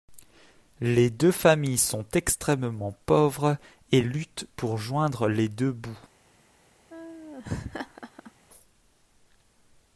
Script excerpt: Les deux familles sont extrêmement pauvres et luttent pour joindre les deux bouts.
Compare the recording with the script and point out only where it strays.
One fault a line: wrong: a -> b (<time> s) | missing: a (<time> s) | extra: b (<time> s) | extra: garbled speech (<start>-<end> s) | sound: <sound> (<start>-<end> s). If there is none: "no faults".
sound: laugh (6.9-8.3 s)